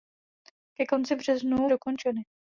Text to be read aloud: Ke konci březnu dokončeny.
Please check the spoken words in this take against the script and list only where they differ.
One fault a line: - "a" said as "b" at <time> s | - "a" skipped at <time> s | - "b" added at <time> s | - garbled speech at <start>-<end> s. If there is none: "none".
none